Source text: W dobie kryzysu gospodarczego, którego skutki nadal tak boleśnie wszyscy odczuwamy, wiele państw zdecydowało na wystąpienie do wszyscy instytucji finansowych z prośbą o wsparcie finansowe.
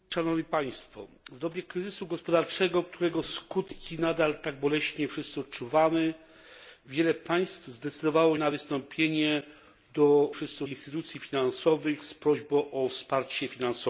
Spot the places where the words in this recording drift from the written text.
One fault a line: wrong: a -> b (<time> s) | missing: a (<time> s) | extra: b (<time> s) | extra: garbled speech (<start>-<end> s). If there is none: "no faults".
no faults